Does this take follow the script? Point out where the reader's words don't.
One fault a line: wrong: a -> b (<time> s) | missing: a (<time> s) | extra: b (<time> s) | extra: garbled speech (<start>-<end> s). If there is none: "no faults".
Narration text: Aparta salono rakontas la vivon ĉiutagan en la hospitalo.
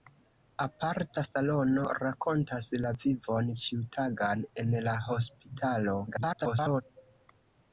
extra: garbled speech (6.1-6.8 s)